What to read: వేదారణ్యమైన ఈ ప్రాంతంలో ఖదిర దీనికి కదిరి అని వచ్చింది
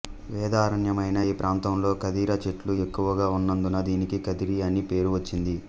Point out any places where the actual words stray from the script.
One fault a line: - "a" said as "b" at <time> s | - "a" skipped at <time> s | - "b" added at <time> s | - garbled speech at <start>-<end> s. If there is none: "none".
- "చెట్లు ఎక్కువగా ఉన్నందున" added at 2.4 s
- "పేరు" added at 4.9 s